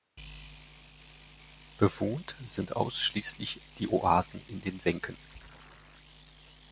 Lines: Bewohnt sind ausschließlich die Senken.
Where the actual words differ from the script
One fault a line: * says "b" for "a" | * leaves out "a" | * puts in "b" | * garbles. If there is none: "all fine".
* puts in "Oasen in den"